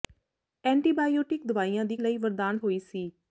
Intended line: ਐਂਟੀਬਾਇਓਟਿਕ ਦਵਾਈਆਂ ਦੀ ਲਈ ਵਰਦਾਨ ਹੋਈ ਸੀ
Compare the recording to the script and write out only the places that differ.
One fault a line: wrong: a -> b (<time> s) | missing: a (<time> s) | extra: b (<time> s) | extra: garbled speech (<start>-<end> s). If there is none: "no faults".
no faults